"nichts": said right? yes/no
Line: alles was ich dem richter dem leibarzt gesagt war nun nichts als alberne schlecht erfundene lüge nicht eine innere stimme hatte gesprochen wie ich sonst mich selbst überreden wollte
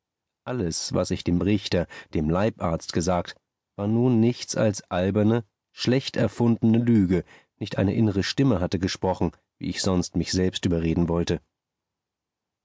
yes